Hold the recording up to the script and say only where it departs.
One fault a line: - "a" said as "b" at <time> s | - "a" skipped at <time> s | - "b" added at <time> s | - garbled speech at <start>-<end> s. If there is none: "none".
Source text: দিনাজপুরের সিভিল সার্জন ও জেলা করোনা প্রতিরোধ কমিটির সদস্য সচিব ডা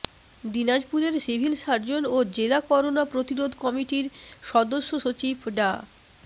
none